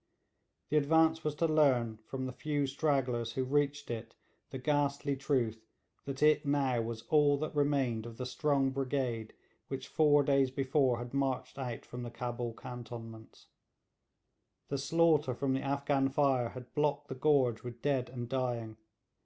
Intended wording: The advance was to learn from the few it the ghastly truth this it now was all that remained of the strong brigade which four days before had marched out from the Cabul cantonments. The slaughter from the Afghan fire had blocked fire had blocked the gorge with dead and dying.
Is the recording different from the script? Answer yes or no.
yes